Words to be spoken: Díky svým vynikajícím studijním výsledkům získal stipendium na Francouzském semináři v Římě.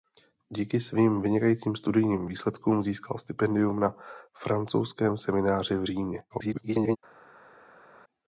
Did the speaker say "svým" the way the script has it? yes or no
yes